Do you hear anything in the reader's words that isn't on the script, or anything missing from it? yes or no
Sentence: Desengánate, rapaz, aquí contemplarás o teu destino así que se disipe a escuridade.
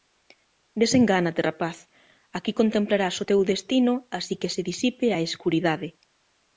no